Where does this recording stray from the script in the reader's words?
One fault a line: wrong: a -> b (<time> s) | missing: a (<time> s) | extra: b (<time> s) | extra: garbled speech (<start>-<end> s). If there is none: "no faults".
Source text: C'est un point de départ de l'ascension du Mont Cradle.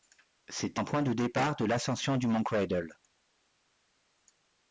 no faults